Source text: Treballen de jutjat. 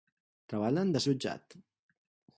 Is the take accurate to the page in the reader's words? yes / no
yes